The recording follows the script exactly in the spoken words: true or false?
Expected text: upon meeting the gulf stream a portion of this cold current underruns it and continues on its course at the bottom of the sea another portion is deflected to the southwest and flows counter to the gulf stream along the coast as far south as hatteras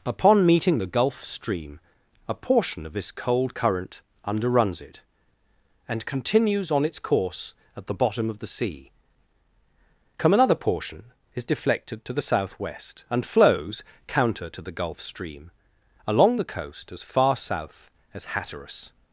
false